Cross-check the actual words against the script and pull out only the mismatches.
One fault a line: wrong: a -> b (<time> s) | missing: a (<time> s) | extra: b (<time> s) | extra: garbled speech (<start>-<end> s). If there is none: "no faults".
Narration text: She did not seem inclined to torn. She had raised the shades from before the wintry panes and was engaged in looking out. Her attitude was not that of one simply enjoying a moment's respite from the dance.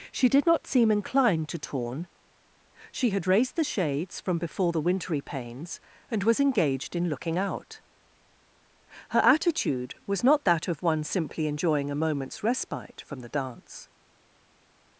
no faults